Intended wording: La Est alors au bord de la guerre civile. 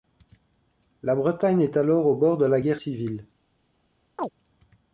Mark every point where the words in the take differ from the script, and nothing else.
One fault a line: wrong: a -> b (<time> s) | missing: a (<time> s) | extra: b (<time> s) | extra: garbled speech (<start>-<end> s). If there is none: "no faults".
extra: Bretagne (1.1 s)